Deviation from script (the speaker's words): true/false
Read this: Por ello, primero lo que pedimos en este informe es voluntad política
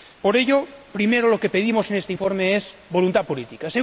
false